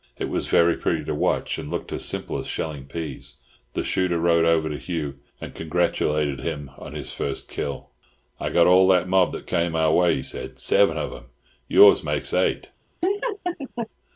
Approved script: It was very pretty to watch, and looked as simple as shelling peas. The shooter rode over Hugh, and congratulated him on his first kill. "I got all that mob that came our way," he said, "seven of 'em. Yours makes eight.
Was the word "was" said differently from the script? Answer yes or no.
no